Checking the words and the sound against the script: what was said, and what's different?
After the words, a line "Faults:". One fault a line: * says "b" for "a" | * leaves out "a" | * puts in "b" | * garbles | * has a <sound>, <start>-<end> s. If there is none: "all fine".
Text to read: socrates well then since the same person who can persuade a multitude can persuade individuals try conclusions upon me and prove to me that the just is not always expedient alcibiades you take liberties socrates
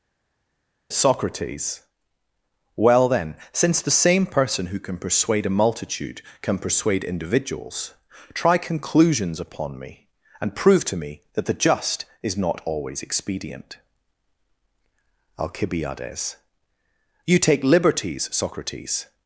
socrates well then since the same person who can persuade a multitude can persuade individuals try conclusions upon me and prove to me that the just is not always expedient alcibiades you take liberties socrates
Faults:
all fine